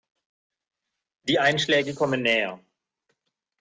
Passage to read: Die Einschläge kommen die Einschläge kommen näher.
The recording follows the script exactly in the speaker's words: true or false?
false